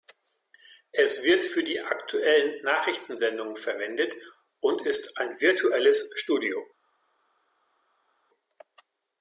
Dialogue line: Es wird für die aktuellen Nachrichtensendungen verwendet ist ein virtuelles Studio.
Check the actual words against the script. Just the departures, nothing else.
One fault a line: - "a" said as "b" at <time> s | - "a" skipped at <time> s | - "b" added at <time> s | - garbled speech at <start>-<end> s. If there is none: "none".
- "und" added at 4.6 s